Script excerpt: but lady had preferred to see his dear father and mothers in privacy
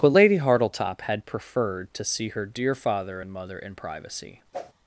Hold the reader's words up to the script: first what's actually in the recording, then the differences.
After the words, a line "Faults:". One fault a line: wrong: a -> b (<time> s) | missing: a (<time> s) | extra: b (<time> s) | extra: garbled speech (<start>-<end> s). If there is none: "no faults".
but lady hartletop had preferred to see her dear father and mother in privacy
Faults:
extra: hartletop (0.4 s)
wrong: his -> her (2.3 s)
wrong: mothers -> mother (3.3 s)